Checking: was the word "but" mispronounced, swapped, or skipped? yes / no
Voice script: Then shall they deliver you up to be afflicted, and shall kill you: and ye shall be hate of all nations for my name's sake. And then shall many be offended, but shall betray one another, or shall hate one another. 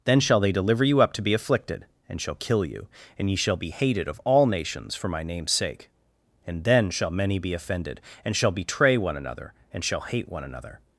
yes